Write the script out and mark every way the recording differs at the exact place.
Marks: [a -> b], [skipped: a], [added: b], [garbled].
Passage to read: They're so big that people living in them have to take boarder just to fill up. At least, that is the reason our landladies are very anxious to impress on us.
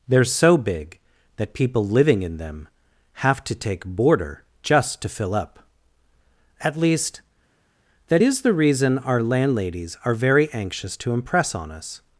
They're so big that people living in them have to take boarder just to fill up. At least, that is the reason our landladies are very anxious to impress on us.